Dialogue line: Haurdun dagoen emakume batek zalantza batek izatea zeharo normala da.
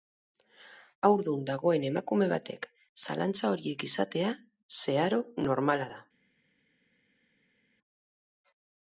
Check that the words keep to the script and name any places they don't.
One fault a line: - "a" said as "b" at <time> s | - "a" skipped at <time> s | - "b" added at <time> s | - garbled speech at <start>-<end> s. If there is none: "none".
- "batek" said as "horiek" at 3.6 s